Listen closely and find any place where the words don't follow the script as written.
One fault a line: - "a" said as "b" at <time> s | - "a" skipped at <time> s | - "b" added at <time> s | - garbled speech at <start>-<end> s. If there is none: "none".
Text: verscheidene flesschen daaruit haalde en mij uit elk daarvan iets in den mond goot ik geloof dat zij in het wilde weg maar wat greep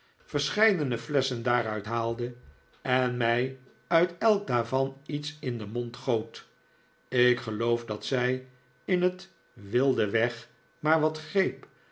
none